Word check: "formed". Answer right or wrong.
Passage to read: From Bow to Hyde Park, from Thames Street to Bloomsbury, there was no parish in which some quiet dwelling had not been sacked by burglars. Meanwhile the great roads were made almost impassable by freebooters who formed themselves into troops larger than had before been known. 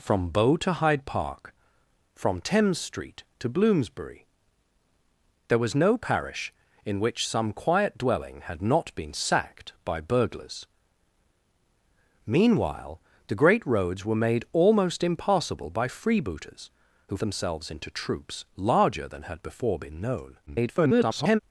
wrong